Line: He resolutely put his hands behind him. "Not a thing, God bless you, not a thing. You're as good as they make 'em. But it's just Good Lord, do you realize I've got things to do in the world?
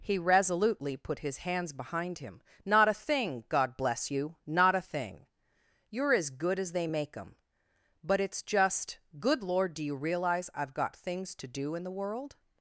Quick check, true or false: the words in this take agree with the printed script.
true